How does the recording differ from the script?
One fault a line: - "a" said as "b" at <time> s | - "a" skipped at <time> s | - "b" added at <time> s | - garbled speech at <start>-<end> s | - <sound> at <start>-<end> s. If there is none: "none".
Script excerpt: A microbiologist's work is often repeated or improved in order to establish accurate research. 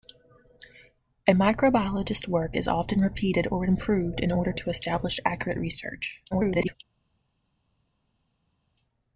- garbled speech at 6.3-6.7 s